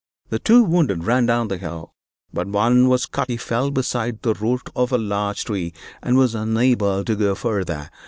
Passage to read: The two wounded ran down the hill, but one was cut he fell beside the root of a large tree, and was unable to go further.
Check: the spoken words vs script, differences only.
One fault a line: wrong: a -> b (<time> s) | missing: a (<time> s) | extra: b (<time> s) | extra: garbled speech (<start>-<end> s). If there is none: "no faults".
no faults